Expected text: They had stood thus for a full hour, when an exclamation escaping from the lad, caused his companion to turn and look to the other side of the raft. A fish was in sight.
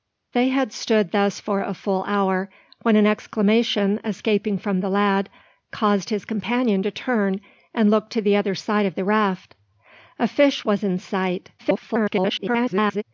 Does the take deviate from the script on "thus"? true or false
false